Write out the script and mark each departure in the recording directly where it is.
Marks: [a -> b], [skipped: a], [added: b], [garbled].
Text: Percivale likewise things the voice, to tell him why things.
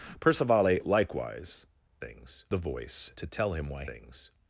Percivale likewise things the voice, to tell him why things.